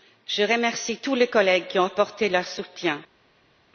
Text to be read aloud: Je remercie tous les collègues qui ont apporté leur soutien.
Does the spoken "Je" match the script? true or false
true